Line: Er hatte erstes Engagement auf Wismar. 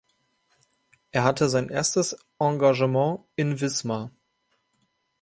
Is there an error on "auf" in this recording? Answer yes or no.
yes